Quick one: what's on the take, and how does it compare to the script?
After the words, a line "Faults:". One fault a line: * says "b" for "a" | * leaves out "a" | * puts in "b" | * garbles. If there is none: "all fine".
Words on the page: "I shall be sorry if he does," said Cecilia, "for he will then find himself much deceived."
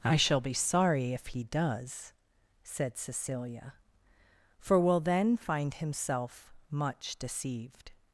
"I shall be sorry if he does," said Cecilia, "for will then find himself much deceived."
Faults:
* leaves out "he"